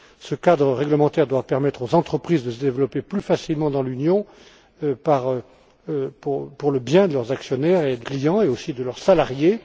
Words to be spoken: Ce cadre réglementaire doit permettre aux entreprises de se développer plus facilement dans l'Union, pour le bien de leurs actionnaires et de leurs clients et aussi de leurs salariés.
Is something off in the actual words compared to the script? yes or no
yes